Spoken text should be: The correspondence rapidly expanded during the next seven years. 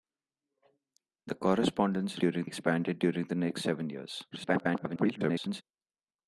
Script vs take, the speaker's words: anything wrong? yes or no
yes